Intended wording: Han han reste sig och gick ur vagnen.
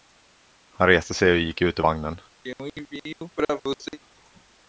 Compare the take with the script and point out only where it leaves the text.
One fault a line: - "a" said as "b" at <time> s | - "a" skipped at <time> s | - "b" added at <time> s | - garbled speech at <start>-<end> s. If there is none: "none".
- "han" skipped at 0.9 s
- "ut" added at 1.6 s